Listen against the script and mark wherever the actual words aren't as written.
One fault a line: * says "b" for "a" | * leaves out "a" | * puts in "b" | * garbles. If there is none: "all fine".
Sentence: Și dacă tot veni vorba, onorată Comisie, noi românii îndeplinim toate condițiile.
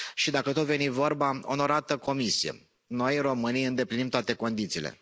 all fine